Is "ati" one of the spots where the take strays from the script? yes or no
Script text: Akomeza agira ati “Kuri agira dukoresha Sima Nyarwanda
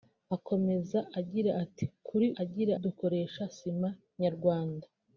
no